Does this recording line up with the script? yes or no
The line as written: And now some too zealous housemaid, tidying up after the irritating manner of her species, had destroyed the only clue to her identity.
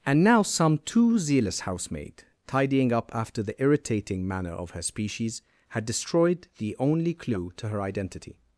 yes